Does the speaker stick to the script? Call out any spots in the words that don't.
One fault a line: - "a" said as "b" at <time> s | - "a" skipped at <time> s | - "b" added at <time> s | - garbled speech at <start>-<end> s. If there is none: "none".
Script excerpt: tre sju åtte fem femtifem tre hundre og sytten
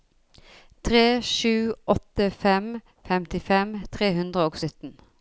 none